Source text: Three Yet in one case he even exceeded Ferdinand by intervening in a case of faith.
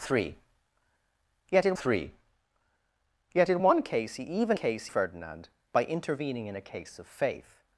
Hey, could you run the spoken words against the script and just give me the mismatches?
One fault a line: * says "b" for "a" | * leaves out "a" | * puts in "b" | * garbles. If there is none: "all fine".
* puts in "three Yet in"
* says "case" for "exceeded"